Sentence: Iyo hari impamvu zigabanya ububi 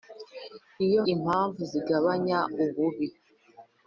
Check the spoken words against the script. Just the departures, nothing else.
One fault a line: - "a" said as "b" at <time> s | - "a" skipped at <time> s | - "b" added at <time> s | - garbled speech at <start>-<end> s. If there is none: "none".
- "hari" skipped at 1.0 s